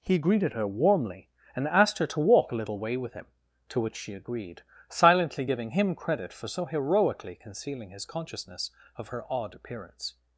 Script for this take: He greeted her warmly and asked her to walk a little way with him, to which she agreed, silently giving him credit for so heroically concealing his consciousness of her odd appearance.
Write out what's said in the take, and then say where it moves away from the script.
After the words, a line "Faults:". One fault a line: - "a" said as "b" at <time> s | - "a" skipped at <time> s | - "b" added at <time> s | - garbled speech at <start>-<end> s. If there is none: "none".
He greeted her warmly and asked her to walk a little way with him, to which she agreed, silently giving him credit for so heroically concealing his consciousness of her odd appearance.
Faults:
none